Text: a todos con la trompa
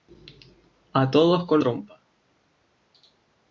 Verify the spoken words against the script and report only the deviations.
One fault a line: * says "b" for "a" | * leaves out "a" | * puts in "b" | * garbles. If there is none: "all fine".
* leaves out "la"